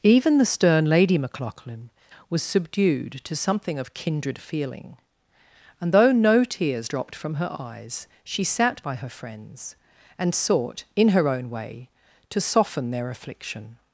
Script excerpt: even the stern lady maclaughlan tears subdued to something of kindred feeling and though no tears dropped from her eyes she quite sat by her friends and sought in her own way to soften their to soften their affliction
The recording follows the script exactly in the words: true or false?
false